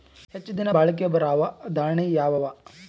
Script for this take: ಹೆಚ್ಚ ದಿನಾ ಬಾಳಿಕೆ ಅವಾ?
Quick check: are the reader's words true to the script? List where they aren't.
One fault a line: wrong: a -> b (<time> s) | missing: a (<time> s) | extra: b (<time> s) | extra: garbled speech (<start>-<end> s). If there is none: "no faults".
extra: ಬರಾವ ದಾಣಿಯಾವ (1.1 s)